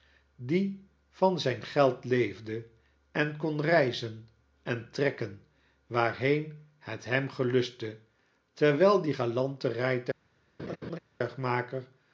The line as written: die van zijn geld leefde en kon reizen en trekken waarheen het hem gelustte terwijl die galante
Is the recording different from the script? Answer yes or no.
no